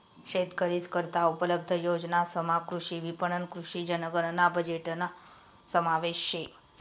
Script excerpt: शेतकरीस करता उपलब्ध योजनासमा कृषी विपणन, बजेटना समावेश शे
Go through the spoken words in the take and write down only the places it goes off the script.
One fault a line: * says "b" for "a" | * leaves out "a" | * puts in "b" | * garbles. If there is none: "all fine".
* puts in "कृषी जनगणना"